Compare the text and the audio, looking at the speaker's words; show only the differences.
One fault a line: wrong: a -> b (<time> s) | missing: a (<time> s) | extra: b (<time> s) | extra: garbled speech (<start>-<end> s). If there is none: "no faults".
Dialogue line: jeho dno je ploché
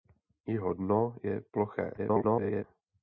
extra: garbled speech (2.0-2.6 s)